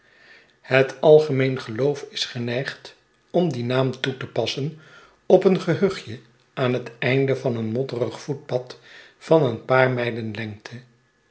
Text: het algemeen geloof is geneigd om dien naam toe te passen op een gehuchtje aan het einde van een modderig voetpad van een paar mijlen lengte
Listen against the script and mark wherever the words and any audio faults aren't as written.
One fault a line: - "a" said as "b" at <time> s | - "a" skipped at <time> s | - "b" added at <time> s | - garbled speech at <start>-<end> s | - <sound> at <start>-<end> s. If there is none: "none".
none